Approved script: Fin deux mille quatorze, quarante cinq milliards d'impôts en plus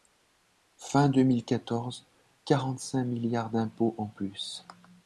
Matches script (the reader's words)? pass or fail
pass